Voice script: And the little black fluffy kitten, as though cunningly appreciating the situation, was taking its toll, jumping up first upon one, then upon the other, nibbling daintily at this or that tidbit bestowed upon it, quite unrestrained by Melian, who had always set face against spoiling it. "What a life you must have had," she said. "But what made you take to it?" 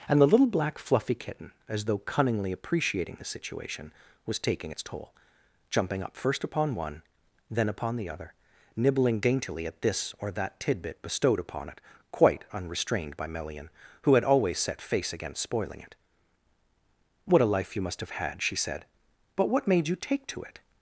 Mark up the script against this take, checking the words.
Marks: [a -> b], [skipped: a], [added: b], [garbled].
And the little black fluffy kitten, as though cunningly appreciating the situation, was taking its toll, jumping up first upon one, then upon the other, nibbling daintily at this or that tidbit bestowed upon it, quite unrestrained by Melian, who had always set face against spoiling it. "What a life you must have had," she said. "But what made you take to it?"